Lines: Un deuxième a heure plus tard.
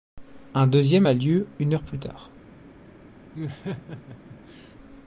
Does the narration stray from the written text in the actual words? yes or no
yes